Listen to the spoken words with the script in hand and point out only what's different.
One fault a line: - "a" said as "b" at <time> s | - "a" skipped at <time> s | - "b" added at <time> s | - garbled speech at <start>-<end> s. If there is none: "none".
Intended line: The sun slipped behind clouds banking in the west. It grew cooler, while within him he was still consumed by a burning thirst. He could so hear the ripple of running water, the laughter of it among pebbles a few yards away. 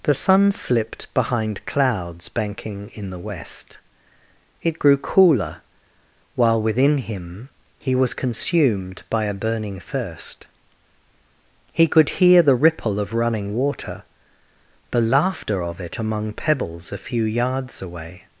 - "still" skipped at 8.2 s
- "so" skipped at 12.2 s